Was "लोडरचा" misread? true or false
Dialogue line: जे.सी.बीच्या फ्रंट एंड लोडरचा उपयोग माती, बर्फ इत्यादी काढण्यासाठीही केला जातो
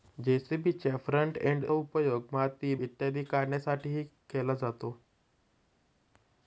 true